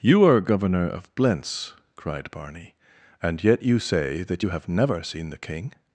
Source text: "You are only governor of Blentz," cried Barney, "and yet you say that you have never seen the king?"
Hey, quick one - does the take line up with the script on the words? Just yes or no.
no